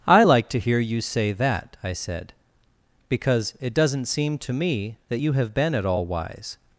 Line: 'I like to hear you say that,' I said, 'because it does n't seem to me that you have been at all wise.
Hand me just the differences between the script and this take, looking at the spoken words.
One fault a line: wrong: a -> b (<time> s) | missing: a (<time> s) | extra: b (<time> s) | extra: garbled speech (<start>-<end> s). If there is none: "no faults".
no faults